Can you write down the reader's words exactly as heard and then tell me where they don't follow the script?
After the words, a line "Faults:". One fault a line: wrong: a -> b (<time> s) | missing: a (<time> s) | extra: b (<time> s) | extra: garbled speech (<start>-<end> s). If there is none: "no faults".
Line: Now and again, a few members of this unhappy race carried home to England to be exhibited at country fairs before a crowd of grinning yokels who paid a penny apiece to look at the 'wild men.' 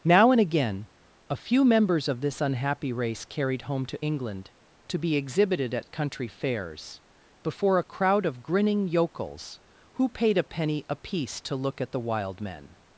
Now and again, a few members of this unhappy race carried home to England to be exhibited at country fairs before a crowd of grinning yokels who paid a penny apiece to look at the 'wild men.'
Faults:
no faults